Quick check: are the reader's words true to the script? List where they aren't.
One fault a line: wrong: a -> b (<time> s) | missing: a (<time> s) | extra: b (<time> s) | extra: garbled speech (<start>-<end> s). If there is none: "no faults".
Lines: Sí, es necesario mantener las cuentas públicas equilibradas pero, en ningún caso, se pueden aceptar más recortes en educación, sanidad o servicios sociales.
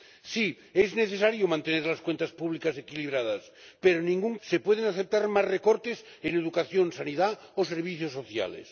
missing: caso (4.4 s)